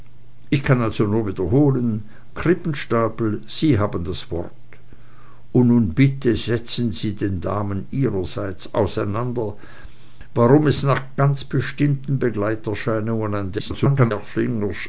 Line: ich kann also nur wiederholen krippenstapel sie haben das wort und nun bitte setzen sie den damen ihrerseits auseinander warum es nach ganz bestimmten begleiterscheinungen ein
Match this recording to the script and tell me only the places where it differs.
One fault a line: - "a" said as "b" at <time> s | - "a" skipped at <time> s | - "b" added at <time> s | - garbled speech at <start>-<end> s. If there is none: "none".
- garbled speech at 13.6-14.1 s